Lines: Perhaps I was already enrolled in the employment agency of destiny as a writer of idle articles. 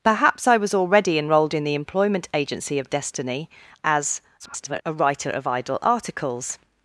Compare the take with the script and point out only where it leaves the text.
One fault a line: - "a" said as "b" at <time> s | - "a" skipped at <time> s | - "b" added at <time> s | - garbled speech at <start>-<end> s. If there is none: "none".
- garbled speech at 4.4-4.8 s